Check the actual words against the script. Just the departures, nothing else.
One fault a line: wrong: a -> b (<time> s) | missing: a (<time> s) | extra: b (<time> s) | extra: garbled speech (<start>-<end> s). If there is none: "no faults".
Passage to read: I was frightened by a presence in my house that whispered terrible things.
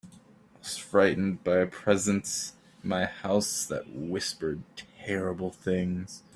no faults